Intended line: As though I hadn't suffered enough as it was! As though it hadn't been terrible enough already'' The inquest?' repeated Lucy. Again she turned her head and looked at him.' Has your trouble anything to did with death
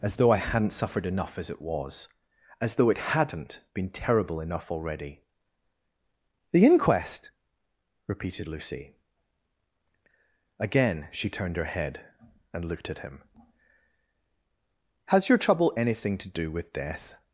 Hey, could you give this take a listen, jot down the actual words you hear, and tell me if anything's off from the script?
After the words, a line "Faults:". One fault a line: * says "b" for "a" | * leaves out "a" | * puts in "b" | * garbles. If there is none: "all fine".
As though I hadn't suffered enough as it was! As though it hadn't been terrible enough already'' The inquest?' repeated Lucy. Again she turned her head and looked at him.' Has your trouble anything to do with death
Faults:
* says "do" for "did"